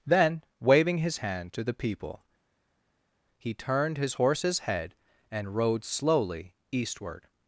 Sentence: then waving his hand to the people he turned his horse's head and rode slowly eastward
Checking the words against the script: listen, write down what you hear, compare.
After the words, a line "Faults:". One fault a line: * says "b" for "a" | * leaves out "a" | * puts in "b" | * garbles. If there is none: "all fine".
then waving his hand to the people he turned his horse's head and rode slowly eastward
Faults:
all fine